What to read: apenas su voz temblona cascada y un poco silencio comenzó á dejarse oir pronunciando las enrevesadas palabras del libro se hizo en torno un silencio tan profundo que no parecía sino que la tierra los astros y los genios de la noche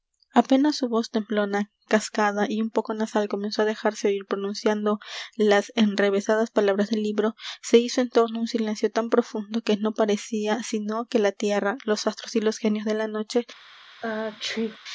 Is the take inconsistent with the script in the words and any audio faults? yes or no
yes